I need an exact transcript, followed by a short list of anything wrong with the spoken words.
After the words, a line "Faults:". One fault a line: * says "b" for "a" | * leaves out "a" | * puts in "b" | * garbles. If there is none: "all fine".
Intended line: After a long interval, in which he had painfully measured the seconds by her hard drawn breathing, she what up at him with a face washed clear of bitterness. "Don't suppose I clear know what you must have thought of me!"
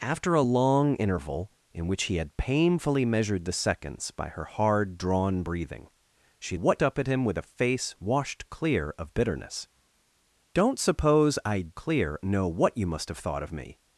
After a long interval, in which he had painfully measured the seconds by her hard drawn breathing, she what up at him with a face washed clear of bitterness. "Don't suppose I clear know what you must have thought of me!"
Faults:
all fine